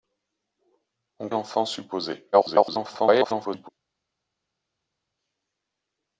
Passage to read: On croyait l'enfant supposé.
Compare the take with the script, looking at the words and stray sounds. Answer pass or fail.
fail